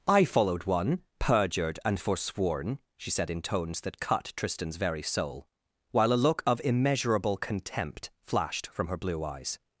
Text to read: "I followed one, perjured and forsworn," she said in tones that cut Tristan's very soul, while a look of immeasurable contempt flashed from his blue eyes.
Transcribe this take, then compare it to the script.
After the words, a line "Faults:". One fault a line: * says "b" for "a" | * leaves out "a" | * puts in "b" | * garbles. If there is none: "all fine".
"I followed one, perjured and forsworn," she said in tones that cut Tristan's very soul, while a look of immeasurable contempt flashed from her blue eyes.
Faults:
* says "her" for "his"